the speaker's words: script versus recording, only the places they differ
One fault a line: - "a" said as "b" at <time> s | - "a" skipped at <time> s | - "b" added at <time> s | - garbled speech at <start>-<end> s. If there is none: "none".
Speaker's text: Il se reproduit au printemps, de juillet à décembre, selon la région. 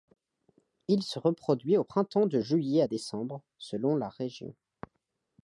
none